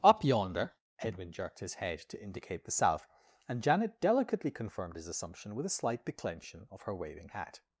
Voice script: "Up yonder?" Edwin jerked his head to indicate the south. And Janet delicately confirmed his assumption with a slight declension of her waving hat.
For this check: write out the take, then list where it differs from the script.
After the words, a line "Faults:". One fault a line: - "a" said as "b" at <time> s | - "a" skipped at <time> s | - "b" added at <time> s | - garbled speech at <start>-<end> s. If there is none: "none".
"Up yonder?" Edwin jerked his head to indicate the south. And Janet delicately confirmed his assumption with a slight declension of her waving hat.
Faults:
none